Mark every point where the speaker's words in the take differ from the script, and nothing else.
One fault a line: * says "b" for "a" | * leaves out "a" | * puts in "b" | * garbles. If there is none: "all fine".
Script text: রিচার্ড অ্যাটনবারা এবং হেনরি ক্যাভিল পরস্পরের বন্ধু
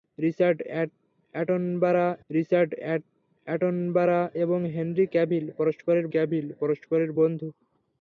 * puts in "রিচার্ড অ্যাটনবারা"
* puts in "ক্যাভিল পরস্পরের"